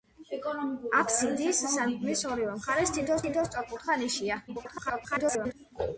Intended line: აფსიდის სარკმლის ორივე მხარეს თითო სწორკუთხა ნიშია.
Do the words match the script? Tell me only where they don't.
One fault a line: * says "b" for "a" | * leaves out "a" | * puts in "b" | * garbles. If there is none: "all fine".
* puts in "თითო"
* garbles